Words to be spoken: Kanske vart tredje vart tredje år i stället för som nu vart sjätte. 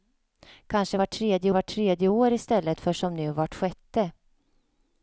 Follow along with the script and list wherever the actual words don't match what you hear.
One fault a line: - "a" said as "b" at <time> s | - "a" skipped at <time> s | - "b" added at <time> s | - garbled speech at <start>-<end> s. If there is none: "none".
none